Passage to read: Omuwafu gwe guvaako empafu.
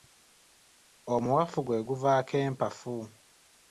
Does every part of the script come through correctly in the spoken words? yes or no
yes